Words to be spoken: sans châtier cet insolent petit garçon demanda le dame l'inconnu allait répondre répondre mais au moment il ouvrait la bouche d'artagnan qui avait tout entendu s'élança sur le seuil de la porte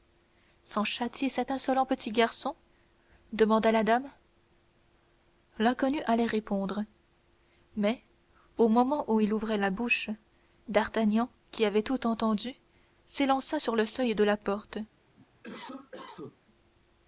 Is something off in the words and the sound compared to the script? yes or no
yes